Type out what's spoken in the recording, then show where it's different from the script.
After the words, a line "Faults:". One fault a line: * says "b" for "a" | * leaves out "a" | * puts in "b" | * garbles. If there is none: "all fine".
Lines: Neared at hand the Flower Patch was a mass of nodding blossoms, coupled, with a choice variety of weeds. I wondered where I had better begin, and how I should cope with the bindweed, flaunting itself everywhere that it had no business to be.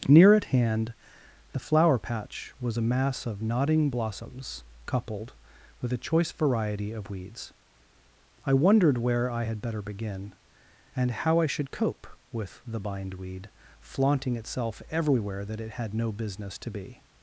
Near at hand the Flower Patch was a mass of nodding blossoms, coupled, with a choice variety of weeds. I wondered where I had better begin, and how I should cope with the bindweed, flaunting itself everywhere that it had no business to be.
Faults:
* says "Near" for "Neared"